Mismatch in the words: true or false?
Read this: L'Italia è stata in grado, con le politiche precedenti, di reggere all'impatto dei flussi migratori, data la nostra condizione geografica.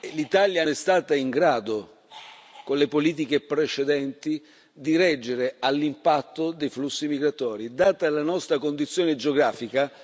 false